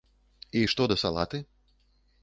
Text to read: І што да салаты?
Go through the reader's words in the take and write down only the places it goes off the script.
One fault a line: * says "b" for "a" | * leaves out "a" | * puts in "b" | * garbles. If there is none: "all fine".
all fine